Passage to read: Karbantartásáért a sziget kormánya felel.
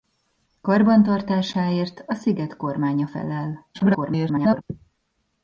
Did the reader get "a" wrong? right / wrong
right